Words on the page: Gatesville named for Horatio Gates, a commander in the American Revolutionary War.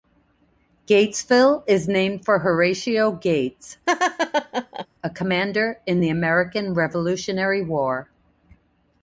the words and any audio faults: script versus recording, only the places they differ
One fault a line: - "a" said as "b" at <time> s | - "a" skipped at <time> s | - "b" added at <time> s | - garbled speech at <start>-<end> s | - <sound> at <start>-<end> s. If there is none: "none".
- "is" added at 1.7 s
- laugh at 3.9-4.9 s